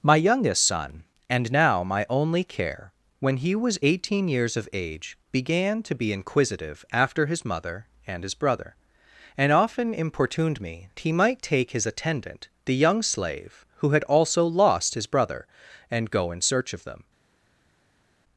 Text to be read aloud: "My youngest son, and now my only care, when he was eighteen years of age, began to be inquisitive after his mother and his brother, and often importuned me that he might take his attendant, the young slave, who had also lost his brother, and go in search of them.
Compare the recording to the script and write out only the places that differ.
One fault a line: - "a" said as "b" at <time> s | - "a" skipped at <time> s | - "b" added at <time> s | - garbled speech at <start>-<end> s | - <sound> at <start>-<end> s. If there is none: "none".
- "that" skipped at 10.9 s